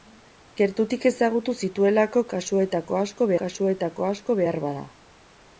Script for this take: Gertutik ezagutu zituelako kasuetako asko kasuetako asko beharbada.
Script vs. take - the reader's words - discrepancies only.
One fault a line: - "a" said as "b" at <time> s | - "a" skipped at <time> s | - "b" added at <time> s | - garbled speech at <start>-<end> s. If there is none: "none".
none